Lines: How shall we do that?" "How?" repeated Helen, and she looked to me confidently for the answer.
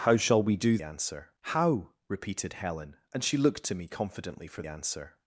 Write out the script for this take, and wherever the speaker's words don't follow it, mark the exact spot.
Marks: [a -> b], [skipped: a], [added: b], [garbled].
How shall we do [that?" -> answer] "How?" repeated Helen, and she looked to me confidently for [skipped: the] answer.